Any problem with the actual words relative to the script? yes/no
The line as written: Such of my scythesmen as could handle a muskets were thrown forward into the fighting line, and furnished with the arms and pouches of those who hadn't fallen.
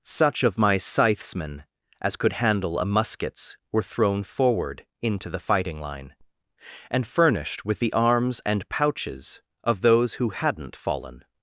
no